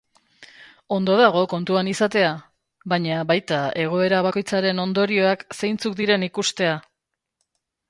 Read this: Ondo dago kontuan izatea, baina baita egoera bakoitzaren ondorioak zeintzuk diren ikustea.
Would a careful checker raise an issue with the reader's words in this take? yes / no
no